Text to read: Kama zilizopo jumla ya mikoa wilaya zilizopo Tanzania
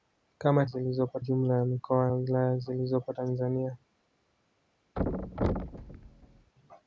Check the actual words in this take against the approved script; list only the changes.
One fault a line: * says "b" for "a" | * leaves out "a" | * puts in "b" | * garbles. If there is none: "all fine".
all fine